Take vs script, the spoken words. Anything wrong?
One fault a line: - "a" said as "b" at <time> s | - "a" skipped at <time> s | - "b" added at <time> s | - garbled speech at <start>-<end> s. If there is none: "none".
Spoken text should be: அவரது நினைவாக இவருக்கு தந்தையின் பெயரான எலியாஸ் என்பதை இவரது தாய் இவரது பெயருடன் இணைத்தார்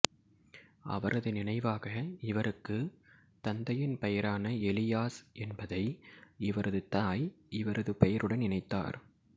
none